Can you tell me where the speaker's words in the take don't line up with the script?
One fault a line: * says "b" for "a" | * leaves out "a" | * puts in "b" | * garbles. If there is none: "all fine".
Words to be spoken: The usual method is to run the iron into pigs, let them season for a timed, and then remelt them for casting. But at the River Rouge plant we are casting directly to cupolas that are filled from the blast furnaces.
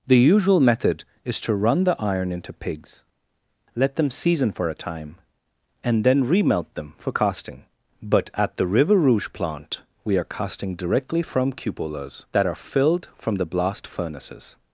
* says "time" for "timed"
* says "from" for "to"